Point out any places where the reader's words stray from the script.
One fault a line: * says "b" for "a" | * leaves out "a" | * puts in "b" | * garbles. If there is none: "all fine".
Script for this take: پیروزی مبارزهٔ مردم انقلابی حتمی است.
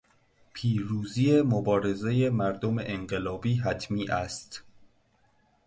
all fine